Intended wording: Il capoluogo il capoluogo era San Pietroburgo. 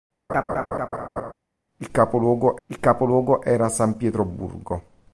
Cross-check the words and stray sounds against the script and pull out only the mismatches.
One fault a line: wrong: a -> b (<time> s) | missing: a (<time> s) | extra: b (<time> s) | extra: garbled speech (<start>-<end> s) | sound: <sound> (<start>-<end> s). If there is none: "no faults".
sound: laugh (0.3-1.3 s)